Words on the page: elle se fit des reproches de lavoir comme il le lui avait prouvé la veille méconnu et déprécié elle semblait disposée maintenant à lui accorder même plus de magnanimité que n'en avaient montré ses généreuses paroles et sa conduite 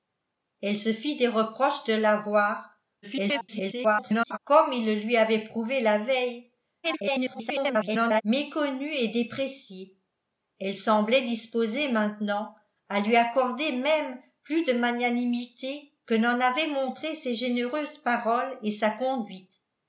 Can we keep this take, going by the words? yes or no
no